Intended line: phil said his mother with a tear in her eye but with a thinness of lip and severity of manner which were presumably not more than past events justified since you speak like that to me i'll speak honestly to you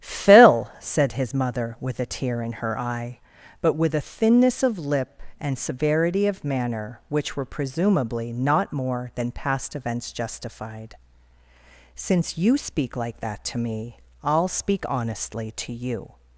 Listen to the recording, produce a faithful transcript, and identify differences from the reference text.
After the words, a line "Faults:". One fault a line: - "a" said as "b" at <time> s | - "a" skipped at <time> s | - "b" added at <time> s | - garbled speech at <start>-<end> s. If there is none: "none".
phil said his mother with a tear in her eye but with a thinness of lip and severity of manner which were presumably not more than past events justified since you speak like that to me i'll speak honestly to you
Faults:
none